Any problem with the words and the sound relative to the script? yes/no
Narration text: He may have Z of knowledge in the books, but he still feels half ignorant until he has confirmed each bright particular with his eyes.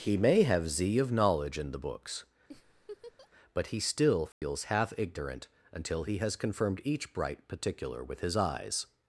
yes